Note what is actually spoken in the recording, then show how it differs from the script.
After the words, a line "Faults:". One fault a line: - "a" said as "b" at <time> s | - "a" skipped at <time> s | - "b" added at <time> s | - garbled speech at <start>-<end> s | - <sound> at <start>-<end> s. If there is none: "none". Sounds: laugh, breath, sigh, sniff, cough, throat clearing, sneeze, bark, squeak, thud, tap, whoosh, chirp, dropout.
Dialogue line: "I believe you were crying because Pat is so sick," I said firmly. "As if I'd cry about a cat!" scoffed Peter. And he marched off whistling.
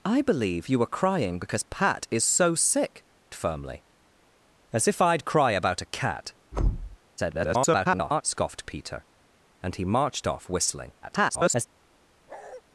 "I believe you were crying because Pat is so sick," firmly. "As if I'd cry about a cat!" [garbled] scoffed Peter. And he marched off whistling. [garbled]
Faults:
- "I said" skipped at 3.0 s
- thud at 6.5-7.0 s
- garbled speech at 7.2-8.2 s
- garbled speech at 11.0-11.7 s
- bark at 12.3-12.6 s